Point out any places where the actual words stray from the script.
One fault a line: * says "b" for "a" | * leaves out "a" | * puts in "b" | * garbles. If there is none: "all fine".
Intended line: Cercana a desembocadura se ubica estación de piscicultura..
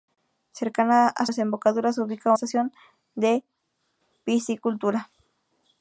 all fine